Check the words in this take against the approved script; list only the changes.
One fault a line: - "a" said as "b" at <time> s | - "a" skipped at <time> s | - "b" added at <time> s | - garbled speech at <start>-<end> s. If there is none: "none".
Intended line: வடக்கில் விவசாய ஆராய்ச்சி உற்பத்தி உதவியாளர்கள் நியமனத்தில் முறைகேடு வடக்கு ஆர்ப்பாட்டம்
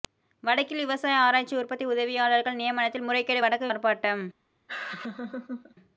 none